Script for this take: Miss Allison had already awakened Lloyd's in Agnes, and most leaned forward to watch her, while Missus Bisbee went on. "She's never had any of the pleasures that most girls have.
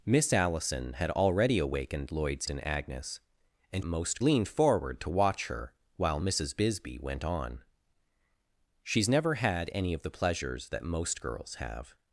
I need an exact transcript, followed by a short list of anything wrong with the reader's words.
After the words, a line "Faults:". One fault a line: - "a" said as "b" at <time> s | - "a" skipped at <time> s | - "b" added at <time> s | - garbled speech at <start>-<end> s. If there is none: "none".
Miss Allison had already awakened Lloyd's in Agnes, and most leaned forward to watch her, while Missus Bisbee went on. "She's never had any of the pleasures that most girls have.
Faults:
none